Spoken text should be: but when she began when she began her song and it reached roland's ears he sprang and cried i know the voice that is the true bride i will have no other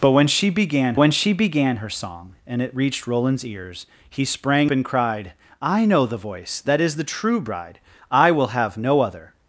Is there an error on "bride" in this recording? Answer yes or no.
no